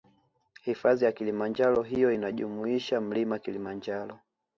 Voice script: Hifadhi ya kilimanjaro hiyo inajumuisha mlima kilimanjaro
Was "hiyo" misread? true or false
false